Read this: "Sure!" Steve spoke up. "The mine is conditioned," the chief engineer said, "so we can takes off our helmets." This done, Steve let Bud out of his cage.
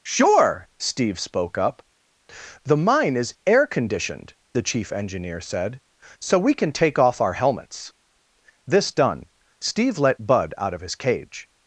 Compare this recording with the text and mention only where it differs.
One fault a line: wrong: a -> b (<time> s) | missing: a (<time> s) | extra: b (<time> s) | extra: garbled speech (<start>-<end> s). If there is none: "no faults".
extra: air (3.4 s)
wrong: takes -> take (6.7 s)